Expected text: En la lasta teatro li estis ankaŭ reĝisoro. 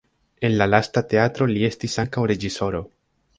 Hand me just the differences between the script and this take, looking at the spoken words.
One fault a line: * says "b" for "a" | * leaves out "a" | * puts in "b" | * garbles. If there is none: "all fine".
all fine